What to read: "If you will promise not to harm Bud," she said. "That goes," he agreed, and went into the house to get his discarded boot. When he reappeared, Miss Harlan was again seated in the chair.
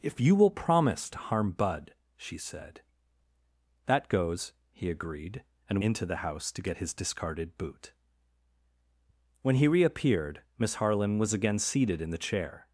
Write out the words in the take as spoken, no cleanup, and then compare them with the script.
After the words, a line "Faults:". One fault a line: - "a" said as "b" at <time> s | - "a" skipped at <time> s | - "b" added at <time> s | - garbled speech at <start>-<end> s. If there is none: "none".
"If you will promise to harm Bud," she said. "That goes," he agreed, and into the house to get his discarded boot. When he reappeared, Miss Harlan was again seated in the chair.
Faults:
- "not" skipped at 1.1 s
- "went" skipped at 5.8 s